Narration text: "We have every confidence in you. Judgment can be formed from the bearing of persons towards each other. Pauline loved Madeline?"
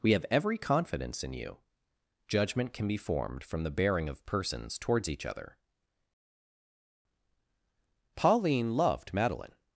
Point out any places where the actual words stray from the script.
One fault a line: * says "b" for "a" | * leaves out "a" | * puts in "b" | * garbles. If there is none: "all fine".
all fine